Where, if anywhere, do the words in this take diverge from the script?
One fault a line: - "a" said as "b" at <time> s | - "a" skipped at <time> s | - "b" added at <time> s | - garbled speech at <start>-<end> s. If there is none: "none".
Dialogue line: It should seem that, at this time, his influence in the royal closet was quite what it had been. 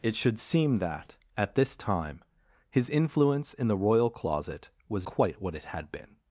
none